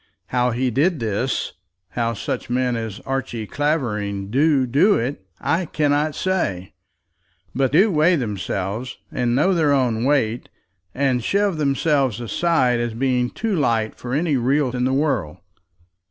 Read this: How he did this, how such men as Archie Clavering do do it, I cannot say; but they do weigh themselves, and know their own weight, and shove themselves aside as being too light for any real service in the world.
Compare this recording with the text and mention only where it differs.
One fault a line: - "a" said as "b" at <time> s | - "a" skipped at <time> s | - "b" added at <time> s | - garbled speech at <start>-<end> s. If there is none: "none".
- "they" skipped at 7.8 s
- "service" skipped at 14.7 s